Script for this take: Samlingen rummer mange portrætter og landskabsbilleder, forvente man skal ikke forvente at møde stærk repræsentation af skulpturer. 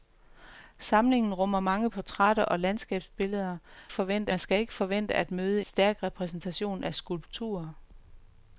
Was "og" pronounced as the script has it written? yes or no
yes